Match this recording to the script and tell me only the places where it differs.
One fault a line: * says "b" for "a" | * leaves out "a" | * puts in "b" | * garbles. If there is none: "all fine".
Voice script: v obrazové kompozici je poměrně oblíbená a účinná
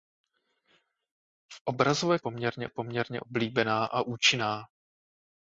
* says "poměrně" for "kompozici"